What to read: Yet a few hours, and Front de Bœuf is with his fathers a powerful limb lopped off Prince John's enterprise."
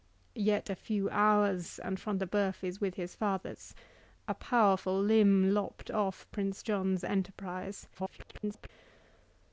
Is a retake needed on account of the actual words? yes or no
yes